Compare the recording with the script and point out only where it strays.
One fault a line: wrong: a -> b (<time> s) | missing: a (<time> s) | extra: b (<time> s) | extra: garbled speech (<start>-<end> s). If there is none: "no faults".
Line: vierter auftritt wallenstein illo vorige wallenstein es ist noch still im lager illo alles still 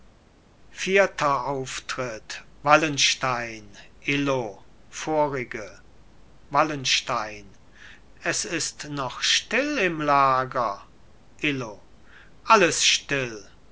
no faults